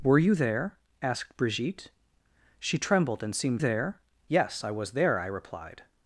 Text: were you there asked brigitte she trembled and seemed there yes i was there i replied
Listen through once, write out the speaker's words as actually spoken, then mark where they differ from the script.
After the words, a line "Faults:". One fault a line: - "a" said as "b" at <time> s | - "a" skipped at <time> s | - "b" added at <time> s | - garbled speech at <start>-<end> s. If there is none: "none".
were you there asked brigitte she trembled and seemed there yes i was there i replied
Faults:
none